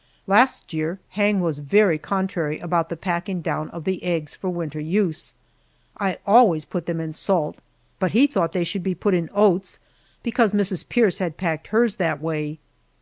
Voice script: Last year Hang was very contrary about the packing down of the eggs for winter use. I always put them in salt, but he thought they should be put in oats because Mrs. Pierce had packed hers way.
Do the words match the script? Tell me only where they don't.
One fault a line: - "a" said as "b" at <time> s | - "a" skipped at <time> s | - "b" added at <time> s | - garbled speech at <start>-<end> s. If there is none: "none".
- "that" added at 12.0 s